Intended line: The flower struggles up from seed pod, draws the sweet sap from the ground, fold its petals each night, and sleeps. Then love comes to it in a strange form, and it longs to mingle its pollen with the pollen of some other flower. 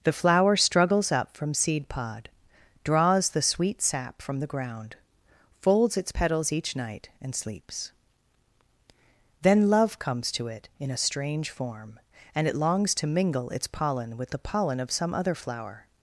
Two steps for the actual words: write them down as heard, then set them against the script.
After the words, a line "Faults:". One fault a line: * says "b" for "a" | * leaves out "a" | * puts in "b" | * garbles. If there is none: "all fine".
The flower struggles up from seed pod, draws the sweet sap from the ground, folds its petals each night, and sleeps. Then love comes to it in a strange form, and it longs to mingle its pollen with the pollen of some other flower.
Faults:
* says "folds" for "fold"